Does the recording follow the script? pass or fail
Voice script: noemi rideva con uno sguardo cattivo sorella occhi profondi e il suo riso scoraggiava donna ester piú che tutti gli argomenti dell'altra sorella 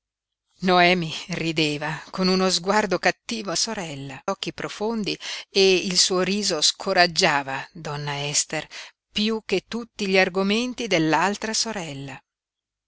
pass